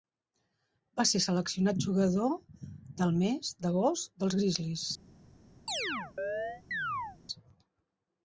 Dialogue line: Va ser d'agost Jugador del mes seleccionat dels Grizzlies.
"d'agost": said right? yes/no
no